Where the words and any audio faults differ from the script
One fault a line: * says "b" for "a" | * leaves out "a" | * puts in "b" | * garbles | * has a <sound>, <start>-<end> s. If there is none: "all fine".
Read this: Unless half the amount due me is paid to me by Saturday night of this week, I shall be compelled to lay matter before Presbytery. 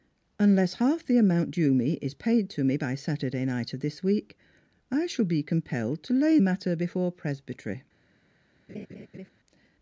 * has a laugh, 8.7-9.3 s